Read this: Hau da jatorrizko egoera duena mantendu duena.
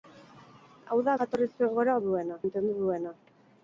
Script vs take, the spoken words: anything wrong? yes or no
no